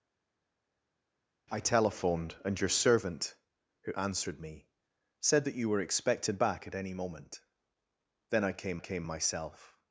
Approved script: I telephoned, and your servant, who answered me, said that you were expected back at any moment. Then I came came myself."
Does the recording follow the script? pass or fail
pass